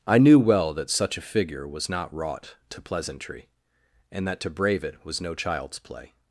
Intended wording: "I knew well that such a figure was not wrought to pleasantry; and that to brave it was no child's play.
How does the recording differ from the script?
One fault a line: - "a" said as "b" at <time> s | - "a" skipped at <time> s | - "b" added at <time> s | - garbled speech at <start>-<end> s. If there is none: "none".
none